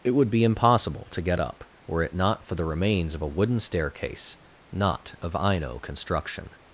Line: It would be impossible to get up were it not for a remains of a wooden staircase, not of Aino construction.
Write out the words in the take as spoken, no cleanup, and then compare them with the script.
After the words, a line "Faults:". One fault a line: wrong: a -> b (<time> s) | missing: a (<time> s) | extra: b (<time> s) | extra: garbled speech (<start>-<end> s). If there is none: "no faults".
It would be impossible to get up were it not for the remains of a wooden staircase, not of Aino construction.
Faults:
wrong: a -> the (2.5 s)